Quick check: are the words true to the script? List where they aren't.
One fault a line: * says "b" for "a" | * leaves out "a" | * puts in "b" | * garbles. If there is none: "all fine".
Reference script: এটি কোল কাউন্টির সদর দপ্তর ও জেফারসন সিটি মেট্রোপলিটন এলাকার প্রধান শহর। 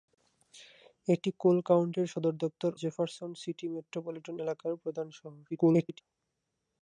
* leaves out "ও"
* garbles